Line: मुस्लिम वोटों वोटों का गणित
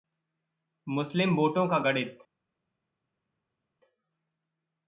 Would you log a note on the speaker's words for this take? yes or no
yes